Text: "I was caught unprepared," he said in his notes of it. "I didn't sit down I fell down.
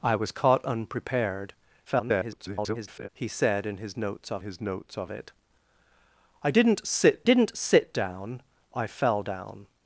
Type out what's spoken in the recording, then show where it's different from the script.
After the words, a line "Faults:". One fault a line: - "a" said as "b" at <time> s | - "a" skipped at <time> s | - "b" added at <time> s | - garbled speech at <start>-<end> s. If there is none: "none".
"I was caught unprepared," [garbled] he said in his notes of his notes of it. "I didn't sit didn't sit down I fell down.
Faults:
- garbled speech at 1.9-3.1 s
- "his notes of" added at 4.4 s
- "didn't sit" added at 7.2 s